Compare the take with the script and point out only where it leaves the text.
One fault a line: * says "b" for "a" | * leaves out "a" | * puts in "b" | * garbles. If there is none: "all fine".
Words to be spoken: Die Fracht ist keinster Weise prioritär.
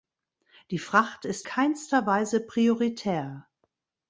all fine